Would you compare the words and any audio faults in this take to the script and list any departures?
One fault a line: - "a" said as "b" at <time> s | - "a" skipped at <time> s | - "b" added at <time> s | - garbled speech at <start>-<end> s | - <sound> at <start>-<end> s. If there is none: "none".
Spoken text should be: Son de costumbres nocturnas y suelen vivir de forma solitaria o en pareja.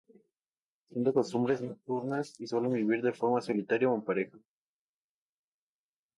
none